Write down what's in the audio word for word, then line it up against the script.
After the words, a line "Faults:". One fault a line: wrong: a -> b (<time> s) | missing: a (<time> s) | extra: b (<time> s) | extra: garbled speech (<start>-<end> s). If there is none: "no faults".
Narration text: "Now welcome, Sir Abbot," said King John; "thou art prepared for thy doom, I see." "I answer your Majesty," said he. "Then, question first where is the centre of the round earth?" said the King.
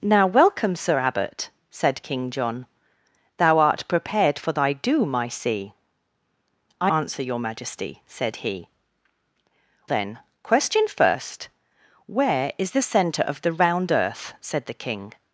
"Now welcome, Sir Abbot," said King John; "thou art prepared for thy doom, I see." "I answer your Majesty," said he. "Then, question first where is the centre of the round earth?" said the King.
Faults:
no faults